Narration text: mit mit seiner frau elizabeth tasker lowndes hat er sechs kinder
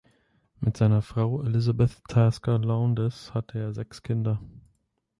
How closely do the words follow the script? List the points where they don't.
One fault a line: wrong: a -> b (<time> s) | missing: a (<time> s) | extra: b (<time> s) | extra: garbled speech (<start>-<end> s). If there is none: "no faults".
missing: mit (0.8 s)
wrong: hat -> hatte (3.4 s)